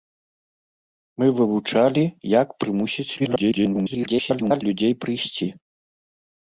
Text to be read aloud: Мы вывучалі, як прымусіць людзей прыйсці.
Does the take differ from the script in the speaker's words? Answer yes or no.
yes